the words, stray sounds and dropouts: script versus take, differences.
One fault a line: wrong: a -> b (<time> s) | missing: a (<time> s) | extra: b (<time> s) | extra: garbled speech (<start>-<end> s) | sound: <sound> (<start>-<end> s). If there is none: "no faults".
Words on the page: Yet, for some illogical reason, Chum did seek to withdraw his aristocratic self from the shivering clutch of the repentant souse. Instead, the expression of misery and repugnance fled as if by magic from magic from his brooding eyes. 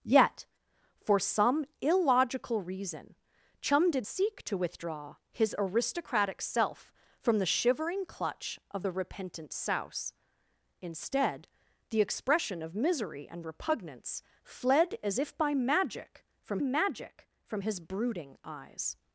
no faults